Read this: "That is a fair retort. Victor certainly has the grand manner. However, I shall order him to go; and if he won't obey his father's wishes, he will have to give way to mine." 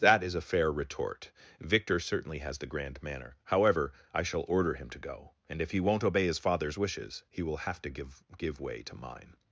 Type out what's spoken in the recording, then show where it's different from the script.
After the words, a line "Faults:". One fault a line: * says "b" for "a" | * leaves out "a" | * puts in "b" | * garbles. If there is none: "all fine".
"That is a fair retort. Victor certainly has the grand manner. However, I shall order him to go; and if he won't obey his father's wishes, he will have to give give way to mine."
Faults:
* puts in "give"